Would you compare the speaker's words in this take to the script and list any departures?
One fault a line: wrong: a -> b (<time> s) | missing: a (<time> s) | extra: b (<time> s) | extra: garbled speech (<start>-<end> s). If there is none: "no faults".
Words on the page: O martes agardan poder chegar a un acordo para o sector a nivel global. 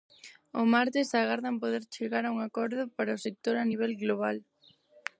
no faults